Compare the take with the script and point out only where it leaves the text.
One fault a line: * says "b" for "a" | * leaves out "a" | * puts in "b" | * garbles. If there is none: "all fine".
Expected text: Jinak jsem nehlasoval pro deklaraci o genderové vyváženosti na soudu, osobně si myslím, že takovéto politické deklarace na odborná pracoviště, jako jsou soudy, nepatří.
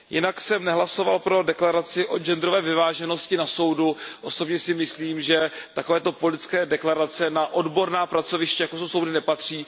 all fine